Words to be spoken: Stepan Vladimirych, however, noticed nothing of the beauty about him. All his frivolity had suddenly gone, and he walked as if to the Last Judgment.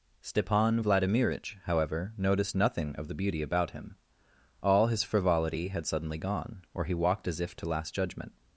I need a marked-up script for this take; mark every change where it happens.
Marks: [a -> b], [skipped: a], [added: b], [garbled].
Stepan Vladimirych, however, noticed nothing of the beauty about him. All his frivolity had suddenly gone, [and -> or] he walked as if to [skipped: the] Last Judgment.